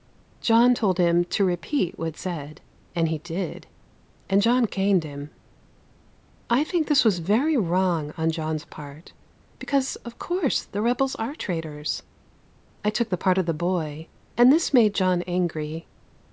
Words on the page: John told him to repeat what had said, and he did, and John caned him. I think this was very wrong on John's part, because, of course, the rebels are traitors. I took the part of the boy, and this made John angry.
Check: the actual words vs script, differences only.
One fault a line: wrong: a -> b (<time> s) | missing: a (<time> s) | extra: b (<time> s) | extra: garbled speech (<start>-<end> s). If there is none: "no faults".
no faults